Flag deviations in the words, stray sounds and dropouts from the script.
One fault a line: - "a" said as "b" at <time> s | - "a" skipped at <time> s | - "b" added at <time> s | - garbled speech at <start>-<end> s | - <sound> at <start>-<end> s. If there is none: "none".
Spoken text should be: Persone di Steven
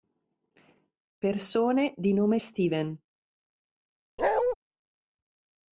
- "nome" added at 2.1 s
- bark at 4.2-4.6 s